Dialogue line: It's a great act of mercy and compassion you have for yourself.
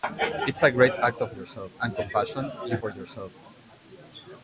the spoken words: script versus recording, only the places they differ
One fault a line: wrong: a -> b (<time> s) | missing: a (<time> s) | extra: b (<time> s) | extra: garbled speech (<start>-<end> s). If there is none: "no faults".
wrong: mercy -> yourself (1.3 s)
missing: have (2.8 s)